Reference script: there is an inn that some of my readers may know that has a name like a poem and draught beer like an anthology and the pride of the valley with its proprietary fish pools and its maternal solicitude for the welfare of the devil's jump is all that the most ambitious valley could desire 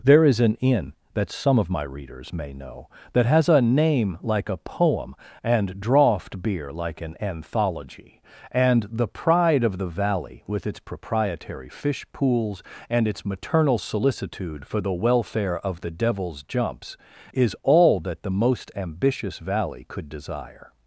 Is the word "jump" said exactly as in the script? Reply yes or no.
no